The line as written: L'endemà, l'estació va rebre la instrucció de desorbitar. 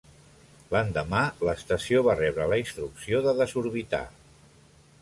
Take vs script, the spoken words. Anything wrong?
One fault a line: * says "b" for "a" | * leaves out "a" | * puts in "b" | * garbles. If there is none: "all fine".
all fine